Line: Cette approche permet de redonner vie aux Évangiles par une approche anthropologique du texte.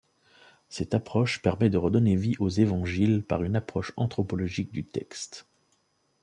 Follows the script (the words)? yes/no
yes